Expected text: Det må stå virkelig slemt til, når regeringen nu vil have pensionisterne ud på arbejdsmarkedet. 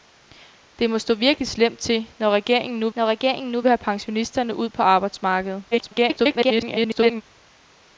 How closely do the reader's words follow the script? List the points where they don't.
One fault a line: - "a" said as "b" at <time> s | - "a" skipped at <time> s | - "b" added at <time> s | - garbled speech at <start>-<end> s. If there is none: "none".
- "når regeringen nu" added at 3.0 s
- garbled speech at 5.7-7.2 s